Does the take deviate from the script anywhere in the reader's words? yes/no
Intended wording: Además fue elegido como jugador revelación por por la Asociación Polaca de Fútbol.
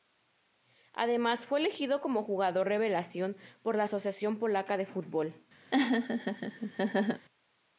yes